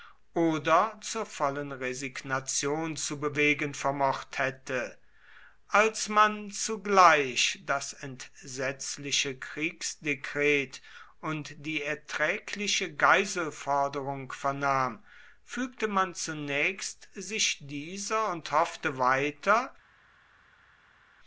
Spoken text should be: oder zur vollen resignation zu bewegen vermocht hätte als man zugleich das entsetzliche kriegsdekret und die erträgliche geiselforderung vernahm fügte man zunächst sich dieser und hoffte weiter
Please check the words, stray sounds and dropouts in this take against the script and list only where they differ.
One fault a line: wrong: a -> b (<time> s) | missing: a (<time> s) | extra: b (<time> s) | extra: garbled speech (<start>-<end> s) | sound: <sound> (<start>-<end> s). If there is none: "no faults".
no faults